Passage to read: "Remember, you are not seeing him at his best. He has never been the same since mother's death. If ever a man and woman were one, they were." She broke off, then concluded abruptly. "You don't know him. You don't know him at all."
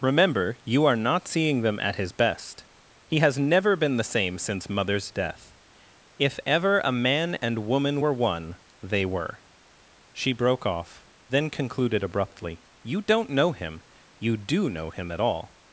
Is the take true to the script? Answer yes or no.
no